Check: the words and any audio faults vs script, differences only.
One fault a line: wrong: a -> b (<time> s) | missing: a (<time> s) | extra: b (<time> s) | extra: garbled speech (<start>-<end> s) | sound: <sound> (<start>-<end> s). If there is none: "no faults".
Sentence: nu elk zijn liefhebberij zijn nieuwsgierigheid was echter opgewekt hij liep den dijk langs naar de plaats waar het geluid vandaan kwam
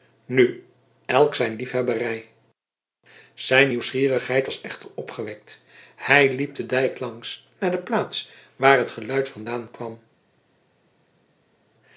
no faults